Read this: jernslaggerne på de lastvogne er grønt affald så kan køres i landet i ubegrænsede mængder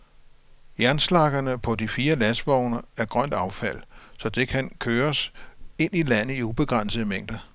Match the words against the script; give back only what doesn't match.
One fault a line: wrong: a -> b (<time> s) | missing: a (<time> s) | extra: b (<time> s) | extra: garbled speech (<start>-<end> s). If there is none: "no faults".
extra: fire (1.9 s)
extra: det (4.3 s)
extra: ind (5.8 s)